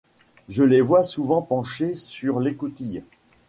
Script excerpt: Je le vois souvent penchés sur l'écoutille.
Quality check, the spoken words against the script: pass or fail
fail